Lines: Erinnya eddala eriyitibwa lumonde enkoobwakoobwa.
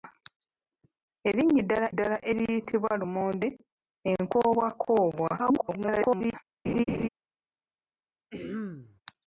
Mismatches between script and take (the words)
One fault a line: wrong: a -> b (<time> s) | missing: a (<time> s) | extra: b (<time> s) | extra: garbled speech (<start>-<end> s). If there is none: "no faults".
extra: eddala (1.9 s)
extra: garbled speech (5.4-6.3 s)